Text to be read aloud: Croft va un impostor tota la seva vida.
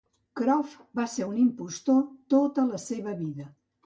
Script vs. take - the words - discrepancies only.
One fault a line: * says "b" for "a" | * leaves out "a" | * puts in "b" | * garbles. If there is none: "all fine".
* puts in "ser"